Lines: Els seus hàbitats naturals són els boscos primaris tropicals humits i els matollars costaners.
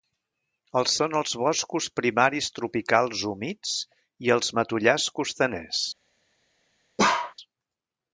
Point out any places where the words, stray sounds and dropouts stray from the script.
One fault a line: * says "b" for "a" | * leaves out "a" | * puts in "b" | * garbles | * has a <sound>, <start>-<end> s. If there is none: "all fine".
* leaves out "seus hàbitats naturals"
* has a bark, 7.0-7.3 s